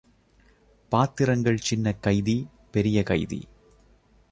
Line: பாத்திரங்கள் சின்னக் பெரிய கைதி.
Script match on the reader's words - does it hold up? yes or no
no